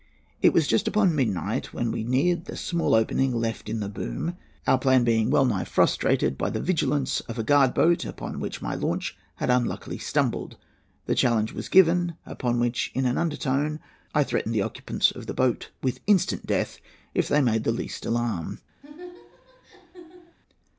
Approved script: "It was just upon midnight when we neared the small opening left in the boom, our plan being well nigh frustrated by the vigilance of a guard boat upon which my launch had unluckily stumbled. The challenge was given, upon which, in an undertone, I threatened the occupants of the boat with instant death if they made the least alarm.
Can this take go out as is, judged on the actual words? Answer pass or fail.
pass